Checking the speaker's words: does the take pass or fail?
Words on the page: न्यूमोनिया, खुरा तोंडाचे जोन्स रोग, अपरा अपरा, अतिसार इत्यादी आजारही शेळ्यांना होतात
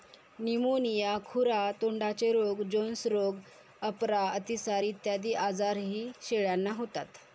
fail